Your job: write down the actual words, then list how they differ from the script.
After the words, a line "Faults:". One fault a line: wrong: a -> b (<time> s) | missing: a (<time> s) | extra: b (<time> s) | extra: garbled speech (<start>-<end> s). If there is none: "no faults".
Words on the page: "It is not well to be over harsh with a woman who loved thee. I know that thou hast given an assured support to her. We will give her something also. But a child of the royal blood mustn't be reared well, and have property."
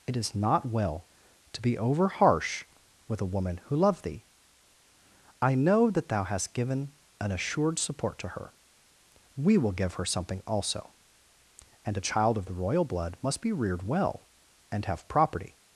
"It is not well to be over harsh with a woman who loved thee. I know that thou hast given an assured support to her. We will give her something also. And a child of the royal blood must be reared well, and have property."
Faults:
wrong: But -> And (11.8 s)
wrong: mustn't -> must (13.2 s)